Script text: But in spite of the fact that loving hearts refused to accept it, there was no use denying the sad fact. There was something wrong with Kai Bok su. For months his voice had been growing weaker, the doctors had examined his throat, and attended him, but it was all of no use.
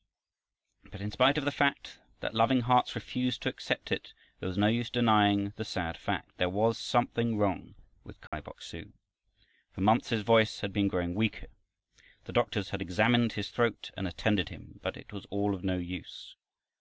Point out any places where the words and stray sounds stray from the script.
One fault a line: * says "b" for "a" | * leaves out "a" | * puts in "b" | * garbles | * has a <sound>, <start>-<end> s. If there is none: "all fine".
* has a dropout, 8.3-8.3 s